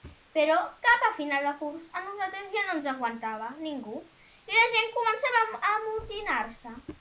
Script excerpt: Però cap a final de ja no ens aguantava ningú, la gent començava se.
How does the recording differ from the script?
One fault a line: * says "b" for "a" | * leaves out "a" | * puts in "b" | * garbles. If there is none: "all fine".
* puts in "curs a nosaltres"
* puts in "i"
* puts in "a amotinar"